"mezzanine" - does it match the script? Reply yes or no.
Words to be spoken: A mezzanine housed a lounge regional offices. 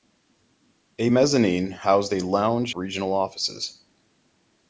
yes